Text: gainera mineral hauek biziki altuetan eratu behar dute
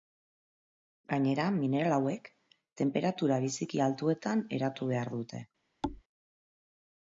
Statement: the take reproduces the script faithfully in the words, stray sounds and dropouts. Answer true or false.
false